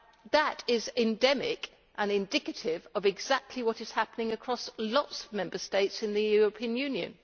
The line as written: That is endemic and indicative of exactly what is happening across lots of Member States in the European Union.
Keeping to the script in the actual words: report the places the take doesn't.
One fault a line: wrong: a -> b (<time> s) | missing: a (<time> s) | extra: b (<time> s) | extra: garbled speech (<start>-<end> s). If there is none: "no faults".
no faults